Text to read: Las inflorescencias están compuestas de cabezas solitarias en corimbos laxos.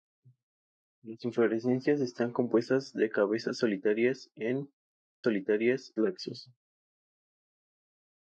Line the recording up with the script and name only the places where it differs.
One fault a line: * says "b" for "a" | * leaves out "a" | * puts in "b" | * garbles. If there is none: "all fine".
* says "solitarias" for "corimbos"